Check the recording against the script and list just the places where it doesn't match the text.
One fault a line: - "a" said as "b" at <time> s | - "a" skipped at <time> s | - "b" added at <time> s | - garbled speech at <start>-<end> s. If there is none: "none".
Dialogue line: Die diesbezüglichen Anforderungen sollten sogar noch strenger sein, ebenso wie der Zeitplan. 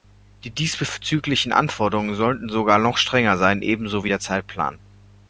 none